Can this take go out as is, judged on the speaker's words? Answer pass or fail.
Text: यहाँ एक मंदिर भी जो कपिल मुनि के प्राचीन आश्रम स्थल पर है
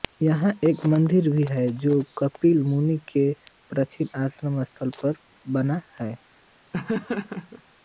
fail